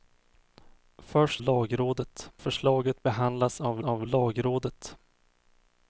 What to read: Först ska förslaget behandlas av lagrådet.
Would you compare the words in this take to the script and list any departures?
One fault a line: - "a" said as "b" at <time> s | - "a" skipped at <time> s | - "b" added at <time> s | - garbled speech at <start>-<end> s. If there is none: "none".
- "ska" said as "lagrådet" at 1.4 s
- "av" added at 3.8 s